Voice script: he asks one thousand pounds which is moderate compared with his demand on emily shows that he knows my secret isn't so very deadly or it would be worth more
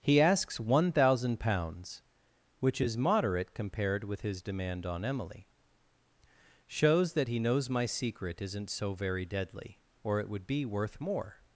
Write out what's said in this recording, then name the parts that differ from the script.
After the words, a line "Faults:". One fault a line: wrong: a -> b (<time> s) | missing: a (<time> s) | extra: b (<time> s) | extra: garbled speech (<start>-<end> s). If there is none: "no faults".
he asks one thousand pounds which is moderate compared with his demand on emily shows that he knows my secret isn't so very deadly or it would be worth more
Faults:
no faults